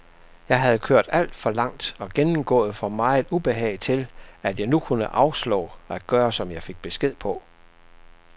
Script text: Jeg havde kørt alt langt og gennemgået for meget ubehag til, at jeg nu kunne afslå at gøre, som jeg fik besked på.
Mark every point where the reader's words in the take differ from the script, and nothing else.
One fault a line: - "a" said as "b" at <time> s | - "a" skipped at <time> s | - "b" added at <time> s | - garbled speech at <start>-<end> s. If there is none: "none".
- "for" added at 1.4 s